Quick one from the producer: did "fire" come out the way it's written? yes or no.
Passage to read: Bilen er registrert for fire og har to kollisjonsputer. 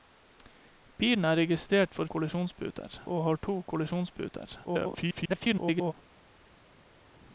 no